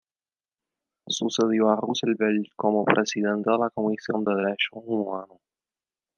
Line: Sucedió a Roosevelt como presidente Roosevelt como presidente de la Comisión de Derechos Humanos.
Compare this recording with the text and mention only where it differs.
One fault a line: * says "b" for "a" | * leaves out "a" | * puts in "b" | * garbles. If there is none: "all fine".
* leaves out "Roosevelt como presidente"